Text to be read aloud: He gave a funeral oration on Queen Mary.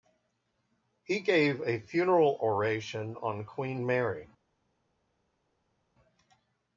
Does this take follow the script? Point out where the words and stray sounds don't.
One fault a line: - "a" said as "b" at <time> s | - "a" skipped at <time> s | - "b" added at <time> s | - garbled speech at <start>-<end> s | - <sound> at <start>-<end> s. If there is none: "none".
none